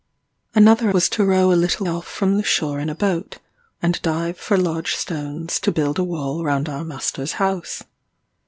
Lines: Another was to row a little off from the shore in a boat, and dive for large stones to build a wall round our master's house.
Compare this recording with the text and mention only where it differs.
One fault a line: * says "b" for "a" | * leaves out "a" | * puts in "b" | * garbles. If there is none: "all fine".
all fine